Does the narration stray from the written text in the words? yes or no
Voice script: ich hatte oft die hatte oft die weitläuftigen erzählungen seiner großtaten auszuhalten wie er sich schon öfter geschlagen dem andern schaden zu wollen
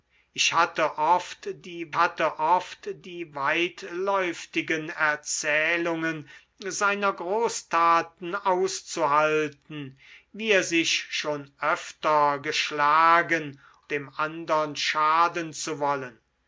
no